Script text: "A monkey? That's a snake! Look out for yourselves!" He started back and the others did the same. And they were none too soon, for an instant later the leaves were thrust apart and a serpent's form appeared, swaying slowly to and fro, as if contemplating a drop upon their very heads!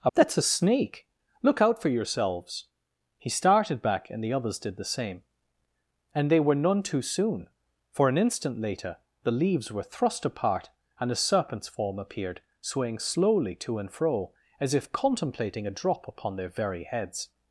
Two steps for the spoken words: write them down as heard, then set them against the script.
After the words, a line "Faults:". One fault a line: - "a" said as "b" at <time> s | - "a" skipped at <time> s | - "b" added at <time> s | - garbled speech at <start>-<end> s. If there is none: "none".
"A? That's a snake! Look out for yourselves!" He started back and the others did the same. And they were none too soon, for an instant later the leaves were thrust apart and a serpent's form appeared, swaying slowly to and fro, as if contemplating a drop upon their very heads!
Faults:
- "monkey" skipped at 0.1 s